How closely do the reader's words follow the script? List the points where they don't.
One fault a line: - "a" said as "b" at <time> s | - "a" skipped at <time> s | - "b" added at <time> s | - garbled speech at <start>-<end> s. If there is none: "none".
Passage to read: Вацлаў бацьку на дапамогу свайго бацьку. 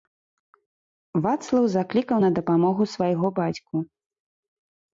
- "бацьку" said as "заклікаў" at 1.8 s